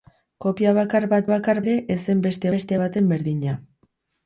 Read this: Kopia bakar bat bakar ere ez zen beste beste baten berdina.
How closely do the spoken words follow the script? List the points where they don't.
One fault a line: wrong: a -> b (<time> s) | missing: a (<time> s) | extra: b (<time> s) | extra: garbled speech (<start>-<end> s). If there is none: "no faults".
no faults